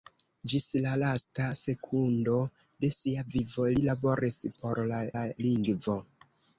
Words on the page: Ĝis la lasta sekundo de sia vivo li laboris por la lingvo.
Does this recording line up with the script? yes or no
no